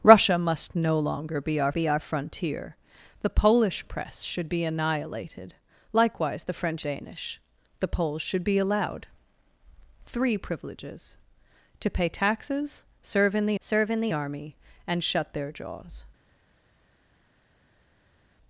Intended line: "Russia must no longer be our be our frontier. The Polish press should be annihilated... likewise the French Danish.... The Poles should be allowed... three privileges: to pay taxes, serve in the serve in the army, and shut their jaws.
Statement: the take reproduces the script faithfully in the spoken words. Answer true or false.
true